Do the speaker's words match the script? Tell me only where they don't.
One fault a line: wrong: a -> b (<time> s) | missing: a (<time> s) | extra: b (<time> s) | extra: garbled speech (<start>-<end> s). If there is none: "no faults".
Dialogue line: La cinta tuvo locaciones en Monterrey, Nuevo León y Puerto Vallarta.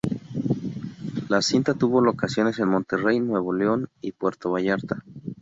no faults